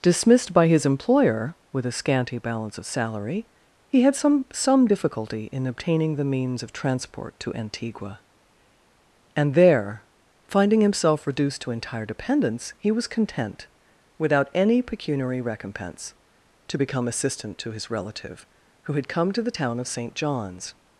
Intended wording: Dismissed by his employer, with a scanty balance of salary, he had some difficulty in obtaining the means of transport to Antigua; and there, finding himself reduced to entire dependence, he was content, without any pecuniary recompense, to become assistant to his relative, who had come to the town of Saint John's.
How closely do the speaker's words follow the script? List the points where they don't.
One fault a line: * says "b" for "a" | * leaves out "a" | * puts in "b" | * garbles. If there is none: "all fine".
* puts in "some"